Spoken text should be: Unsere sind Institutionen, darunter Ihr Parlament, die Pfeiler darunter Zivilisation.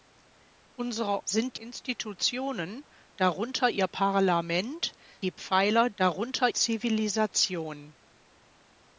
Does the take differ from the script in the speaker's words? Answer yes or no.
no